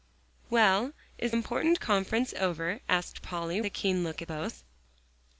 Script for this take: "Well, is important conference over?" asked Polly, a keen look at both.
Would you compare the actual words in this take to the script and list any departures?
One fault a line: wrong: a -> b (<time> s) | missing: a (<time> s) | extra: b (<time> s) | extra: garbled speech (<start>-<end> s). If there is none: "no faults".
no faults